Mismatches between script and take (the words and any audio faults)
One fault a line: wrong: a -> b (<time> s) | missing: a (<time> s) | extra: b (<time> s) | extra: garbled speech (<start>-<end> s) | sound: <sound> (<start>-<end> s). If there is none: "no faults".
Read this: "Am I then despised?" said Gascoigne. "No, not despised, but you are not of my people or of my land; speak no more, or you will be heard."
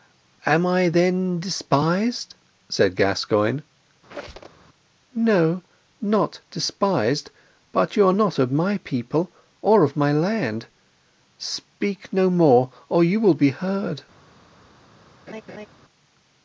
sound: squeak (4.1-4.6 s)
sound: laugh (15.3-15.7 s)